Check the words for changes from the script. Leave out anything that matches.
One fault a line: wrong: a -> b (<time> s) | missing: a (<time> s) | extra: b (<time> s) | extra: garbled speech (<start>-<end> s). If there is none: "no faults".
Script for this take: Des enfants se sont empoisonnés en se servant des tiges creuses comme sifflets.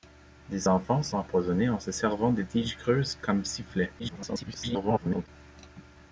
missing: sont (1.1 s)
extra: garbled speech (4.0-5.3 s)